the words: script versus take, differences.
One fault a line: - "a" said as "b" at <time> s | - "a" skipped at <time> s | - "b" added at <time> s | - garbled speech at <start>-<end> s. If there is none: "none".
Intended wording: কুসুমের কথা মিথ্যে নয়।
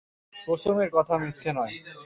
none